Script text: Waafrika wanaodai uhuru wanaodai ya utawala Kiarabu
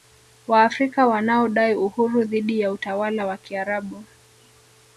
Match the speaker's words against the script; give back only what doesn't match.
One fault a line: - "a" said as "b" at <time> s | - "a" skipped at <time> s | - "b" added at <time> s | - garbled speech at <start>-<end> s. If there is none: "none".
- "wanaodai" said as "dhidi" at 2.2 s
- "wa" added at 3.3 s